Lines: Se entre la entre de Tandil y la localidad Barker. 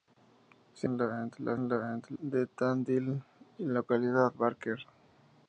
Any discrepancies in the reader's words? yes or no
no